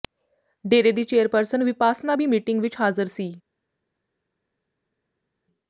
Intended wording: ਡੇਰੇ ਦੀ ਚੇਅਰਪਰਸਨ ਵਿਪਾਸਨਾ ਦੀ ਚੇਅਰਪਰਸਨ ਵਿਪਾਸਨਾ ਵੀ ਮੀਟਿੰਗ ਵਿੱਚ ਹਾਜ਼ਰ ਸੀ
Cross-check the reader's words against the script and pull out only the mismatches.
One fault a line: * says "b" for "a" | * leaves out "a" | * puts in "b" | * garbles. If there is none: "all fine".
* leaves out "ਦੀ ਚੇਅਰਪਰਸਨ ਵਿਪਾਸਨਾ"